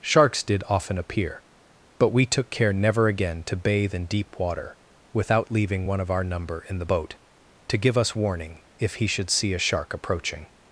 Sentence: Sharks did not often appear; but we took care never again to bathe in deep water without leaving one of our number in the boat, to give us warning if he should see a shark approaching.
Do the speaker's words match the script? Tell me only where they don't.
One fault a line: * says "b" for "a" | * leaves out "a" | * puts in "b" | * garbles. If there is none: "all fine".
* leaves out "not"